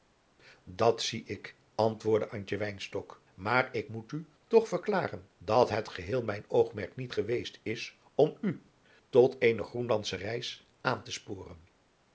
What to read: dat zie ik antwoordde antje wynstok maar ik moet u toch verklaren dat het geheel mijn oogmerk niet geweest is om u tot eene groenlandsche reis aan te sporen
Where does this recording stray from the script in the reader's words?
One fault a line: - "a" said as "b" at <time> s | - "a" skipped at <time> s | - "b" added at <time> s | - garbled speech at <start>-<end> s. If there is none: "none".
none